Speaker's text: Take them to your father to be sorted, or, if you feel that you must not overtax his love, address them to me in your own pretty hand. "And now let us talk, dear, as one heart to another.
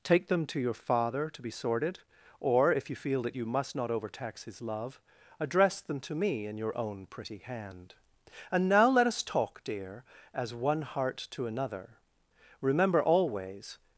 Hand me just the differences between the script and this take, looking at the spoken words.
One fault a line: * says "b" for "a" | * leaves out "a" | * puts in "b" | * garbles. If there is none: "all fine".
* puts in "Remember always"